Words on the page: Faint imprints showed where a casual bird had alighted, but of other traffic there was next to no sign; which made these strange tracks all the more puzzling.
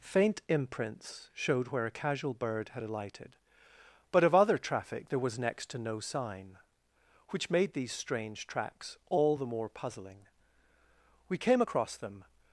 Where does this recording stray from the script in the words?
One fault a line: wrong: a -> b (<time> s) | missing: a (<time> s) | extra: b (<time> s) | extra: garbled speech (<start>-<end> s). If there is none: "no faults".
extra: We came across them (11.3 s)